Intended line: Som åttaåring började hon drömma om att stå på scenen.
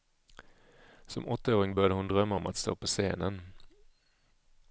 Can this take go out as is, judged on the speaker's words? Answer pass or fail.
pass